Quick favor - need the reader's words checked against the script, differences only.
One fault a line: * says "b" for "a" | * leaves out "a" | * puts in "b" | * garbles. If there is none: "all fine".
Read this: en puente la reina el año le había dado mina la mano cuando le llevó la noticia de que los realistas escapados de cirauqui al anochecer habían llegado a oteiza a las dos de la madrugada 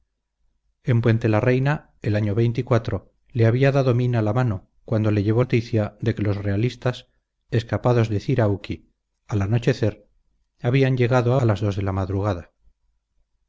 * leaves out "la"
* leaves out "oteiza"